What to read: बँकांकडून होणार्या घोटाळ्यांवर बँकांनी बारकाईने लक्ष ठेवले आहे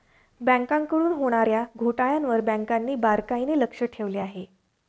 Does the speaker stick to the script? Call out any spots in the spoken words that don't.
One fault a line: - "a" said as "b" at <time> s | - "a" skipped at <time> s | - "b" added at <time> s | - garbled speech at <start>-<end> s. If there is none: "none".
none